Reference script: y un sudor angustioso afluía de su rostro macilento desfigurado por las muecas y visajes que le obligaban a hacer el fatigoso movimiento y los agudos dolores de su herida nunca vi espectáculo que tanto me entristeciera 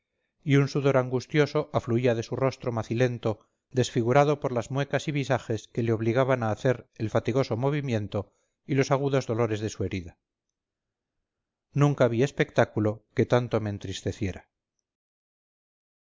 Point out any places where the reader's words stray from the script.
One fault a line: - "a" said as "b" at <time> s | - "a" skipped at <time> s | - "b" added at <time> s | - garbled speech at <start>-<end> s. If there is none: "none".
none